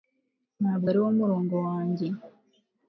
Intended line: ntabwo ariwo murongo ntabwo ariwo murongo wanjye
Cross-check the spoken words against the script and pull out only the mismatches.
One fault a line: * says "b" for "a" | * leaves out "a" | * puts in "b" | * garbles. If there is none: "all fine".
* leaves out "ntabwo ariwo murongo"